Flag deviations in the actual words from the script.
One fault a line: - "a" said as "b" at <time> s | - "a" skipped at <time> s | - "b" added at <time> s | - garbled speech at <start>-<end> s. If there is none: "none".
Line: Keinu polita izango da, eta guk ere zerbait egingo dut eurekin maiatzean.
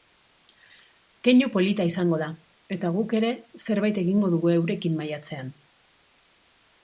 - "dut" said as "dugu" at 4.4 s